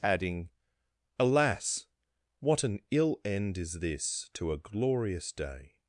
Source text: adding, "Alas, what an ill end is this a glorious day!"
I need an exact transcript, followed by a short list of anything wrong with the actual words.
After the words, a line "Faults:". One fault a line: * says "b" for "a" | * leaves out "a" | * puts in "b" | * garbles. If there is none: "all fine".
adding, "Alas, what an ill end is this to a glorious day!"
Faults:
* puts in "to"